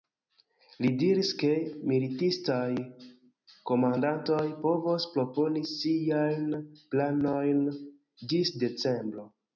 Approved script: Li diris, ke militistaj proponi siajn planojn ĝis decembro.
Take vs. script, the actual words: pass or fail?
fail